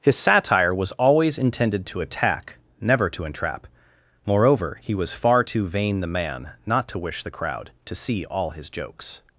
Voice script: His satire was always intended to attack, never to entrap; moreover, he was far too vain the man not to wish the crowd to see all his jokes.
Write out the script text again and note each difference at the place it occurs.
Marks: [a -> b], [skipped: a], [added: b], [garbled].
His satire was always intended to attack, never to entrap; moreover, he was far too vain the man not to wish the crowd to see all his jokes.